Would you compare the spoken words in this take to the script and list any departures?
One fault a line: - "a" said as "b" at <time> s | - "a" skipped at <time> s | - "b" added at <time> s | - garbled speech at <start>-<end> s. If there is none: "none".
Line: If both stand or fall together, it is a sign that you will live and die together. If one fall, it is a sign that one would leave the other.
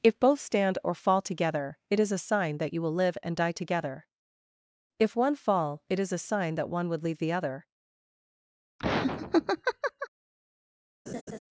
none